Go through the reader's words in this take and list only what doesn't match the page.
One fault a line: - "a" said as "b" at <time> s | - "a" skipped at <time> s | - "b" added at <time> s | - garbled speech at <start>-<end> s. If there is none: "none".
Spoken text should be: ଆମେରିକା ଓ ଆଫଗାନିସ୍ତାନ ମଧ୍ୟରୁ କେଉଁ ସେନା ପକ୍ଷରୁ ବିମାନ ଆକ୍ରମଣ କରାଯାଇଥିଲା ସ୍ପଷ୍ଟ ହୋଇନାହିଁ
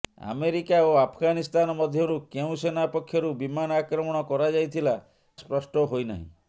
none